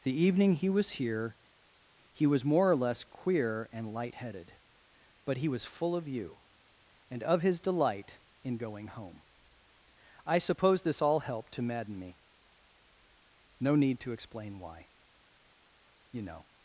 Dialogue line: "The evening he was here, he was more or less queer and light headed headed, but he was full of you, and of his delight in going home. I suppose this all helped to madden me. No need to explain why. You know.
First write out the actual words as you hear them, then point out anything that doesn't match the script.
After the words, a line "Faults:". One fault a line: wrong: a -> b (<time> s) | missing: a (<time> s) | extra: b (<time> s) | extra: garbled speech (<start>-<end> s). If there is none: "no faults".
"The evening he was here, he was more or less queer and light headed, but he was full of you, and of his delight in going home. I suppose this all helped to madden me. No need to explain why. You know.
Faults:
missing: headed (4.5 s)